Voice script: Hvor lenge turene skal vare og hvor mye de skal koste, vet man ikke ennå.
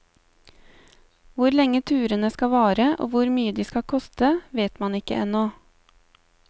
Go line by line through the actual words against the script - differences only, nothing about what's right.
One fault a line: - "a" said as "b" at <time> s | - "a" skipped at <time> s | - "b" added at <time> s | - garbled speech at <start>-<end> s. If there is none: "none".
none